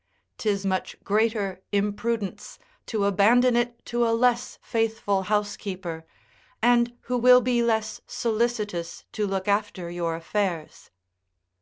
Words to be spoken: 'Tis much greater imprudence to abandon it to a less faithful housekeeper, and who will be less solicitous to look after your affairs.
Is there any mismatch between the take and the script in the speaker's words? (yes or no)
no